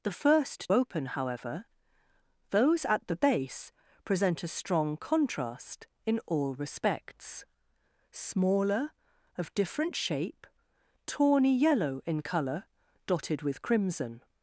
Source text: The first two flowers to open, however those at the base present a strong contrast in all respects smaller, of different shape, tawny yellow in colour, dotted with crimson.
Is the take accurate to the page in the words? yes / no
no